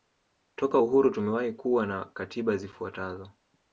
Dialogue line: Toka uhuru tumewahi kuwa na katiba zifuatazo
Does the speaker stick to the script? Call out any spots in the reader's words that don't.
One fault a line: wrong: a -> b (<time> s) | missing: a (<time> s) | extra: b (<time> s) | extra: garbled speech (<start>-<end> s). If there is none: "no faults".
no faults